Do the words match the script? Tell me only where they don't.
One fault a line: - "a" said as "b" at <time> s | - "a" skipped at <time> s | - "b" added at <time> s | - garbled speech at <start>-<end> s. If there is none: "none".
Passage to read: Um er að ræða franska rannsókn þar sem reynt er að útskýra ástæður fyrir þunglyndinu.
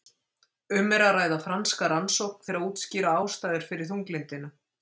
- "þar sem reynt" skipped at 2.5 s